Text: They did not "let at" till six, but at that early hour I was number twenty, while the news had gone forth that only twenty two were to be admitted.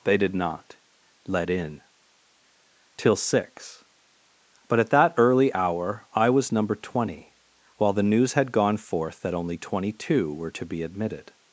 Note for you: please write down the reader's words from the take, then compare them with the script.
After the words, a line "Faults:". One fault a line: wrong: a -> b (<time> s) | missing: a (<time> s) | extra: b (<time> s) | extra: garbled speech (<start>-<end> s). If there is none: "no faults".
They did not "let in" till six, but at that early hour I was number twenty, while the news had gone forth that only twenty two were to be admitted.
Faults:
wrong: at -> in (1.5 s)